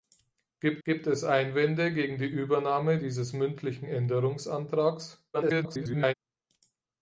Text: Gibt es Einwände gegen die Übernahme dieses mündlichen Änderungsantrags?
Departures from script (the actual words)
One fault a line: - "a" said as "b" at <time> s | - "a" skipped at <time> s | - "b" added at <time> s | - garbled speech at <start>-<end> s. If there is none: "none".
- "gibt" added at 0.8 s
- garbled speech at 5.3-6.1 s